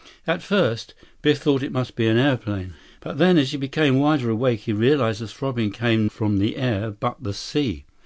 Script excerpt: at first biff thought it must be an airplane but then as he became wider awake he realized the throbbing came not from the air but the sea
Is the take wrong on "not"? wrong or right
wrong